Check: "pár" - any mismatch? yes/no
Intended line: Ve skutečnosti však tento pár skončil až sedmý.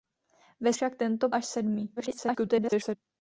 yes